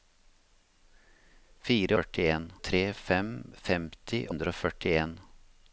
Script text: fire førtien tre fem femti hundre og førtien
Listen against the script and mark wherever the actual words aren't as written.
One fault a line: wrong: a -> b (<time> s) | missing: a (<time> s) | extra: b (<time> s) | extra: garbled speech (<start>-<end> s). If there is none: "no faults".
no faults